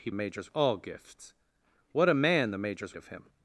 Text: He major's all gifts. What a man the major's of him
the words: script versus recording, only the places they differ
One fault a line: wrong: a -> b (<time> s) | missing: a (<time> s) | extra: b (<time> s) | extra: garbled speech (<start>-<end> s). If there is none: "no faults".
no faults